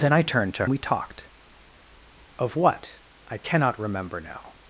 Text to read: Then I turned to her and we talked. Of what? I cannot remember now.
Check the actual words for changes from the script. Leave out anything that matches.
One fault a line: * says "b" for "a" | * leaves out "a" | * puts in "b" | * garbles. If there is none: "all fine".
* leaves out "her and"